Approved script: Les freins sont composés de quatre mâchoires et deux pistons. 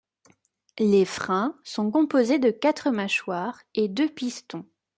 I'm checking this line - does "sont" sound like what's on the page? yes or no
yes